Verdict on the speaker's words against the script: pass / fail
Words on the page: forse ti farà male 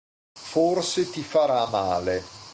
pass